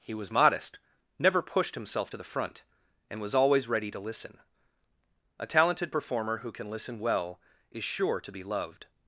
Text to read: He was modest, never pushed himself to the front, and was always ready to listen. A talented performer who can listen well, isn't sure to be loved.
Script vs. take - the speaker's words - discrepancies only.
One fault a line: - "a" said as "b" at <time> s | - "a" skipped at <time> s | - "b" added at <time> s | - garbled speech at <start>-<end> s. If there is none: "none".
- "isn't" said as "is" at 7.7 s